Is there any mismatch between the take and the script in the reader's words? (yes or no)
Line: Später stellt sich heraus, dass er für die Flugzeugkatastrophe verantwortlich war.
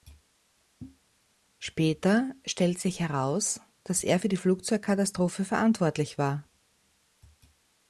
no